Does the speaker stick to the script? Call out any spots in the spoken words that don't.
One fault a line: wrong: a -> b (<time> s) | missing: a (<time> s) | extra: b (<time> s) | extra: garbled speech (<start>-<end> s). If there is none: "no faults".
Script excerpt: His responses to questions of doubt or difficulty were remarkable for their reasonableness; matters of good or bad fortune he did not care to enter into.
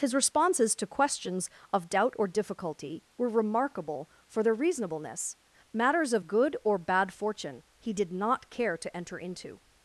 no faults